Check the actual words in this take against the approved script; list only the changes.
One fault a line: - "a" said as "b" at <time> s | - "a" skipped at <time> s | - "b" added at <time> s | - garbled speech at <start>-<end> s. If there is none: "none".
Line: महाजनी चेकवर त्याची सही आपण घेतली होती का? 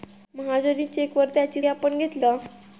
- "सही" skipped at 1.6 s
- "होती" skipped at 2.2 s